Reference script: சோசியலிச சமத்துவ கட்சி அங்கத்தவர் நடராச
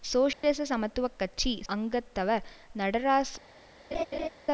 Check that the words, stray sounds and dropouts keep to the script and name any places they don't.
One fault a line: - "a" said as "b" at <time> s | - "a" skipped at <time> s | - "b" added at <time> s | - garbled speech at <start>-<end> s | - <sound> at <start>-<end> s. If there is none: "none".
- dropout at 0.3-0.4 s
- laugh at 3.9-4.3 s